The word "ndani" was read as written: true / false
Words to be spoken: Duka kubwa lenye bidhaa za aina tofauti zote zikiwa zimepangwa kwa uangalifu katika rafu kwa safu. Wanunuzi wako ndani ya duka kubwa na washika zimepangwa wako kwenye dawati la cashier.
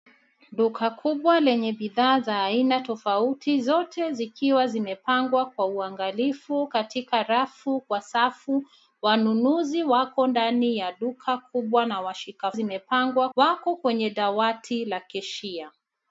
true